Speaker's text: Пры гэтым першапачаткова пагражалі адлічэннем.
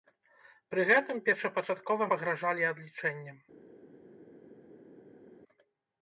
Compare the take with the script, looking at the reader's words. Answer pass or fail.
pass